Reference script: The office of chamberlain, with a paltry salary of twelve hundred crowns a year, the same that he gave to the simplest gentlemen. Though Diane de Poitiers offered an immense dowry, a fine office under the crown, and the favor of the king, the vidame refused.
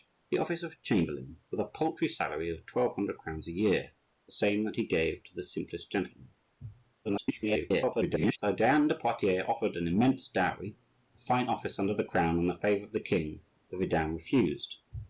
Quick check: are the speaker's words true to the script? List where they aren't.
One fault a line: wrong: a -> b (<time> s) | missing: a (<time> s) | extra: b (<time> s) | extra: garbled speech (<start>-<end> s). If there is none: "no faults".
extra: garbled speech (7.0-8.4 s)